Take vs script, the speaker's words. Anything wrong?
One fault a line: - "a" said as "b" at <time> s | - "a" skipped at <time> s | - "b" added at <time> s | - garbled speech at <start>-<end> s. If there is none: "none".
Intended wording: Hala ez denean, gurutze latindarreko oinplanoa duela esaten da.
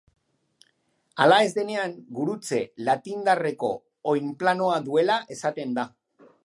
none